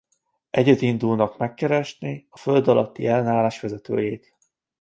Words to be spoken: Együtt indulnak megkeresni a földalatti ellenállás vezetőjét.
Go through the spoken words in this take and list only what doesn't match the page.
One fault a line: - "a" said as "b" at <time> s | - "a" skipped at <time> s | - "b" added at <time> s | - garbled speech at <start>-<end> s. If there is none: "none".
none